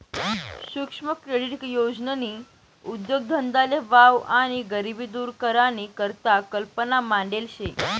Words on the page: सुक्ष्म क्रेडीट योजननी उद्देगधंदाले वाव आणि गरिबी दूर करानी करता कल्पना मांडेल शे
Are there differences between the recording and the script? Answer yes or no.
no